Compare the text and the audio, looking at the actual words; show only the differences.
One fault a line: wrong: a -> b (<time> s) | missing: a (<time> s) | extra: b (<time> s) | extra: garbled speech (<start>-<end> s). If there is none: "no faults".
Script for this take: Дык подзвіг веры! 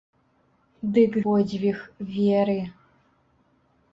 no faults